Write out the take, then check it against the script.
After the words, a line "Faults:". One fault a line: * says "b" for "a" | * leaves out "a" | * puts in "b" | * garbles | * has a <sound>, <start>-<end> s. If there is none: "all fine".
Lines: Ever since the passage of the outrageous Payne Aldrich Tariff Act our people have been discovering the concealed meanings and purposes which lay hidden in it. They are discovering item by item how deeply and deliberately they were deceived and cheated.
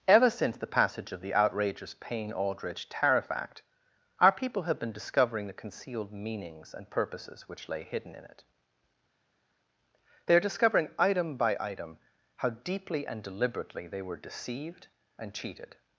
Ever since the passage of the outrageous Payne Aldrich Tariff Act our people have been discovering the concealed meanings and purposes which lay hidden in it. They are discovering item by item how deeply and deliberately they were deceived and cheated.
Faults:
all fine